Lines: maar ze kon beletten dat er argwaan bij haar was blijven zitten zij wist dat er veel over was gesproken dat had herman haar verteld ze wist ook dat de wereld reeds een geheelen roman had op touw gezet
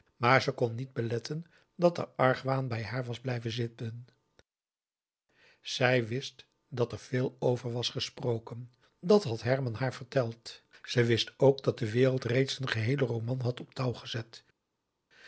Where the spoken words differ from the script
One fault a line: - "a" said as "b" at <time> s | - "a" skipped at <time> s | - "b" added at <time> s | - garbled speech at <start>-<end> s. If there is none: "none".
- "niet" added at 0.8 s